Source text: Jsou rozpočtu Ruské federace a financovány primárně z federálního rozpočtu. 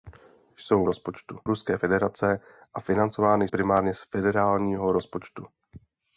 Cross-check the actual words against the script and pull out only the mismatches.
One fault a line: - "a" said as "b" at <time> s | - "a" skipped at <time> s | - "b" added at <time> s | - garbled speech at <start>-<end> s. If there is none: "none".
none